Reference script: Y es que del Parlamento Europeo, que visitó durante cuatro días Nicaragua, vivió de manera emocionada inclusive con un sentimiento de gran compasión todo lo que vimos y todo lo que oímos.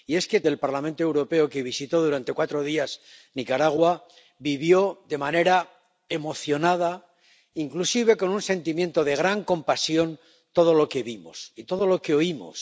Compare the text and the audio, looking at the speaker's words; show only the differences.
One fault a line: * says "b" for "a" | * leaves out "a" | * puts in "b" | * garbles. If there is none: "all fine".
all fine